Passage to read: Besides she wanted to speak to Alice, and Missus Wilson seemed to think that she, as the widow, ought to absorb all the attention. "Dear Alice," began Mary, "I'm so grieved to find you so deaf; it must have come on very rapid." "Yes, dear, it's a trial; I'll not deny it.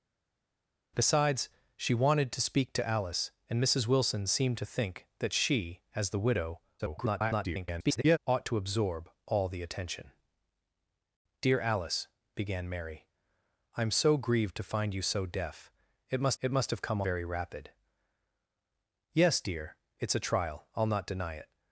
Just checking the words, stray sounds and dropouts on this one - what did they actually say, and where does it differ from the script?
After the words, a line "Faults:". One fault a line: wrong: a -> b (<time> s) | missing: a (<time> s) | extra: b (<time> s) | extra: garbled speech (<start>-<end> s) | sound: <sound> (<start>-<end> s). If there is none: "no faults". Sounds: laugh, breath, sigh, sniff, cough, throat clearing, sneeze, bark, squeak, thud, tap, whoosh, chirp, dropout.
Besides she wanted to speak to Alice, and Missus Wilson seemed to think that she, as the widow, [garbled] ought to absorb all the attention. "Dear Alice," began Mary, "I'm so grieved to find you so deaf; it must it must have come very rapid." "Yes, dear, it's a trial; I'll not deny it.
Faults:
extra: garbled speech (6.8-8.2 s)
extra: it must (16.4 s)
missing: on (17.0 s)